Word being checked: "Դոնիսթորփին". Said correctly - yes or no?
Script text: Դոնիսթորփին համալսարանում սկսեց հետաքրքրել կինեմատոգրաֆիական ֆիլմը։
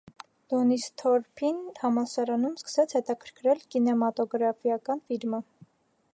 yes